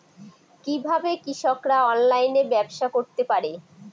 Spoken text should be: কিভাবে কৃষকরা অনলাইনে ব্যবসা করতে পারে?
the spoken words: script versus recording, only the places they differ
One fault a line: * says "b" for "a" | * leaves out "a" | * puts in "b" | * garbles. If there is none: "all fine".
all fine